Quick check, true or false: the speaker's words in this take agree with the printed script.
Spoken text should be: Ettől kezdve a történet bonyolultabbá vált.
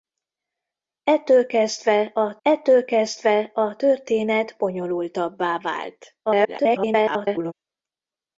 false